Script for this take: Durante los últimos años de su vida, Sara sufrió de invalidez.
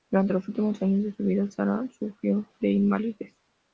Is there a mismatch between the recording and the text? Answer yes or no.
no